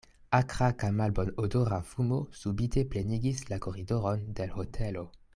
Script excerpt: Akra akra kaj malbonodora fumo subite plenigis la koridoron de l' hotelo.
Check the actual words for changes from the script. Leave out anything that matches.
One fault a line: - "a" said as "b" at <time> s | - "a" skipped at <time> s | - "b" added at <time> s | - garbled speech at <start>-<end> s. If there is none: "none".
- "akra" skipped at 0.7 s